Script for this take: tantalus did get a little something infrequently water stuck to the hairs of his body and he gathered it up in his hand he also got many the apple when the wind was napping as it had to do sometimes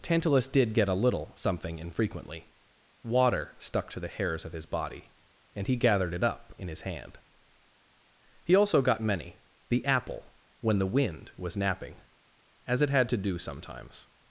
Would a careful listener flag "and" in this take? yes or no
no